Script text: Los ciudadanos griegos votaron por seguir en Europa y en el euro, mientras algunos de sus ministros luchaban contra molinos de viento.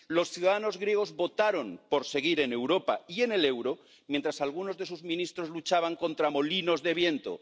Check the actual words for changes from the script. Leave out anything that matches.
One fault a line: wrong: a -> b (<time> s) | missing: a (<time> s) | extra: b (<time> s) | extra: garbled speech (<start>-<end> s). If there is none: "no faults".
no faults